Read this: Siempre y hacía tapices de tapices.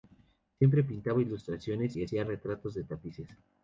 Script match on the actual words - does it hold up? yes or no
no